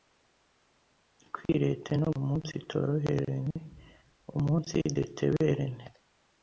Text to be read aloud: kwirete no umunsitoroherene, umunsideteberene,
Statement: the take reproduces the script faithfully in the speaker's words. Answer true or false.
true